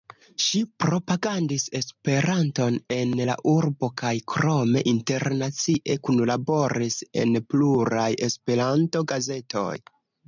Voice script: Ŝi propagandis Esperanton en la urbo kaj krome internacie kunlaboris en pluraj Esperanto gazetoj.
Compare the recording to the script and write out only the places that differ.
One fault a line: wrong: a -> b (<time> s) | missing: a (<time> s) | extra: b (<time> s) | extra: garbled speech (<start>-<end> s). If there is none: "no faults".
no faults